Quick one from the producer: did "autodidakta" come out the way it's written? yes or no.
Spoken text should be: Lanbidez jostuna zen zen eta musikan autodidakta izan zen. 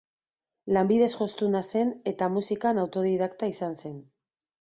yes